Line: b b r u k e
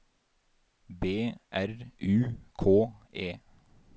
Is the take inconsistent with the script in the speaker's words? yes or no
yes